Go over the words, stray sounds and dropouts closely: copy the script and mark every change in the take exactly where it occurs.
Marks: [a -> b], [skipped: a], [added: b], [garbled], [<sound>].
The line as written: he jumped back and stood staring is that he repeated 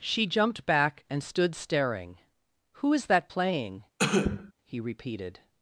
[he -> she] jumped back and stood staring [added: who] is that [added: playing] [cough] he repeated